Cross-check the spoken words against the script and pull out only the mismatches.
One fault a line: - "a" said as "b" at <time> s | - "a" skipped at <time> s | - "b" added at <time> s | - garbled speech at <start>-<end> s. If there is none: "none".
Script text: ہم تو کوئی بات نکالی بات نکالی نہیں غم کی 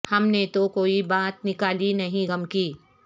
- "نے" added at 0.3 s
- "بات نکالی" skipped at 1.9 s